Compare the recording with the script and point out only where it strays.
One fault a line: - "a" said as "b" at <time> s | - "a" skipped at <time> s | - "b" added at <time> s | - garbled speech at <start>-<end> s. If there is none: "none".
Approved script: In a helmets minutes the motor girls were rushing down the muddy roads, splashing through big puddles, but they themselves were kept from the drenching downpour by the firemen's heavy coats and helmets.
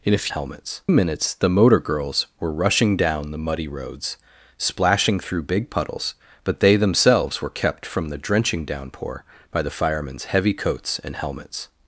none